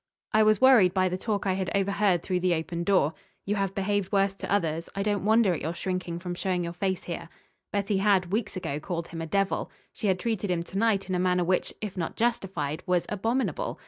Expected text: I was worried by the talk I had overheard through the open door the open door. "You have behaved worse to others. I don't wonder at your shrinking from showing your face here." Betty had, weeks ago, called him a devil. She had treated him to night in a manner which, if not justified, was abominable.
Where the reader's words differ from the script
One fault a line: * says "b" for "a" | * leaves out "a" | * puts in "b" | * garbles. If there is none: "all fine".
* leaves out "the open door"